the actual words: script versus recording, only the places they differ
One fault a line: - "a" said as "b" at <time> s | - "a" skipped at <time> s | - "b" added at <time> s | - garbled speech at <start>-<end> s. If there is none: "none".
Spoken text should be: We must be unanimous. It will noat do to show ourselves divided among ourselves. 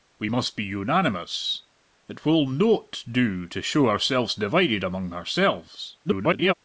- garbled speech at 6.0-6.5 s